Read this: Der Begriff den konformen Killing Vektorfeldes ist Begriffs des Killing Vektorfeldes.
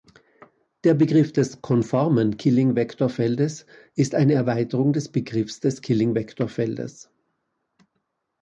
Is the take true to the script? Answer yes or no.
no